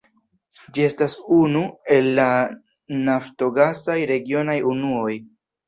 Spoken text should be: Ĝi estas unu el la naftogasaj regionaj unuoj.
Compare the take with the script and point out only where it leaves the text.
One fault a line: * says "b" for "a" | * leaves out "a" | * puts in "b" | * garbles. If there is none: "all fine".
all fine